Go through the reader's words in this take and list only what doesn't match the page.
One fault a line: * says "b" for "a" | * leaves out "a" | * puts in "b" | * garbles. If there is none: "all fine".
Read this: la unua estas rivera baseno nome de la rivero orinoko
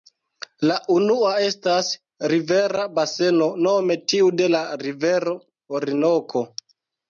* puts in "tiu"